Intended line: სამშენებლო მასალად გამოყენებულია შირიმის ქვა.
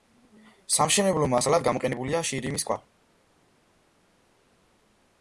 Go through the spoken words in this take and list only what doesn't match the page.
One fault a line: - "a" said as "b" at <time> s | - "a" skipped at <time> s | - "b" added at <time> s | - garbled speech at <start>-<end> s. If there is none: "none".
none